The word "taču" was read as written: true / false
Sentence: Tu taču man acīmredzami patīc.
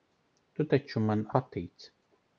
true